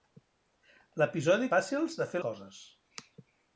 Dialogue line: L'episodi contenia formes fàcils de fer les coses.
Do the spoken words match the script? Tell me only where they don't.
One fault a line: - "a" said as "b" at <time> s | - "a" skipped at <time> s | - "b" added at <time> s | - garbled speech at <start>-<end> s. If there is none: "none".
- "contenia formes" skipped at 1.5 s
- "les" skipped at 2.2 s